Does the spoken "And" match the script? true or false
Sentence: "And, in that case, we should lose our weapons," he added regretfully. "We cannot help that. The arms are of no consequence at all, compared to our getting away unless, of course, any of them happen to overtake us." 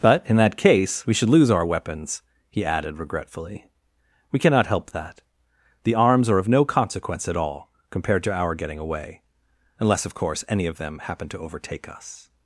false